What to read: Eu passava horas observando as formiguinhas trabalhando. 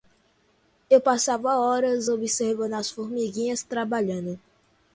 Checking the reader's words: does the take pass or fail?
pass